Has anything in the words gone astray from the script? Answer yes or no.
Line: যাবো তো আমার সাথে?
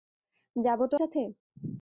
yes